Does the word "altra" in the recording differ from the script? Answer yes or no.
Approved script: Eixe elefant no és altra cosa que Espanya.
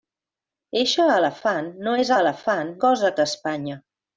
yes